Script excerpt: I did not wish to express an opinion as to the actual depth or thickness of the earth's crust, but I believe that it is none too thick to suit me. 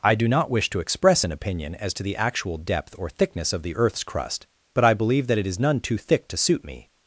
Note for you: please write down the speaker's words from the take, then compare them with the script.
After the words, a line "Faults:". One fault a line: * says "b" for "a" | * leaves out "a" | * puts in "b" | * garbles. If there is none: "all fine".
I do not wish to express an opinion as to the actual depth or thickness of the earth's crust, but I believe that it is none too thick to suit me.
Faults:
* says "do" for "did"